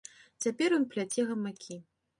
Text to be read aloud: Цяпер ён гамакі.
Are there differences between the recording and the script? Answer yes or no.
yes